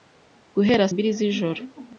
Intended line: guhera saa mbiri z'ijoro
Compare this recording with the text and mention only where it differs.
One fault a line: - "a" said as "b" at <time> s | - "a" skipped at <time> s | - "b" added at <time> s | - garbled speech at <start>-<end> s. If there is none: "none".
- "saa" skipped at 0.8 s